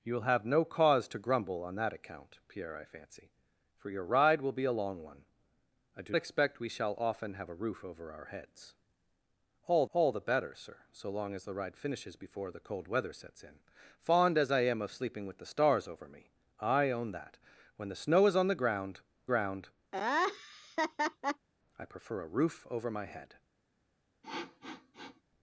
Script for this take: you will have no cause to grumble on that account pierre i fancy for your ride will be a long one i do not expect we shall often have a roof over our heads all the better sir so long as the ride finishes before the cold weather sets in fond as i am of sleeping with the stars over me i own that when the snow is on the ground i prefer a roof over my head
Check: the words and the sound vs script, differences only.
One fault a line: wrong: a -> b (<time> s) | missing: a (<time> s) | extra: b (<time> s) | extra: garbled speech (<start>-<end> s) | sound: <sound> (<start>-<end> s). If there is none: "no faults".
missing: not (6.2 s)
extra: all (9.9 s)
extra: ground (19.3 s)
sound: laugh (19.9-21.5 s)
sound: sniff (24.2-25.2 s)